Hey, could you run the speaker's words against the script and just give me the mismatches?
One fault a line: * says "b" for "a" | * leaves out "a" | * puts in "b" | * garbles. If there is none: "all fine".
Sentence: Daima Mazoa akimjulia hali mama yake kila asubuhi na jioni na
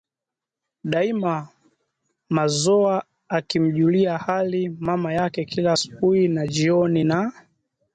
all fine